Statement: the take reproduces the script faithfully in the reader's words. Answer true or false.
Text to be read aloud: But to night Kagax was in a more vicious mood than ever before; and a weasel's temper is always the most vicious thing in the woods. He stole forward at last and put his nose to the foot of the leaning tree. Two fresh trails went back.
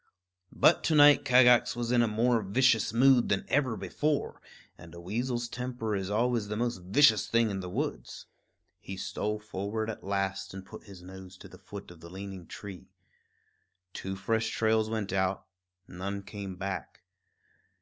false